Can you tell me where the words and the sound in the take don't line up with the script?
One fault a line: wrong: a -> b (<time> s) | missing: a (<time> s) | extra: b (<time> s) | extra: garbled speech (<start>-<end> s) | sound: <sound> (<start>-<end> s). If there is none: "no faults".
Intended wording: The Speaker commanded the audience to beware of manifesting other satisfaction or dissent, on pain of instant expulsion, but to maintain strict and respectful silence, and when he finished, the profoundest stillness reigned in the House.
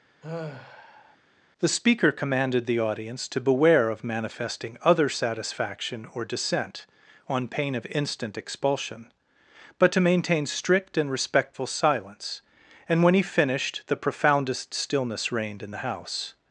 sound: sigh (0.2-1.2 s)